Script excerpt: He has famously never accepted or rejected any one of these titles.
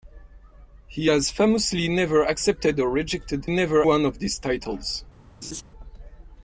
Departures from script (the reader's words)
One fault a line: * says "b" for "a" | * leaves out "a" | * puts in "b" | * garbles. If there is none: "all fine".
* says "never" for "any"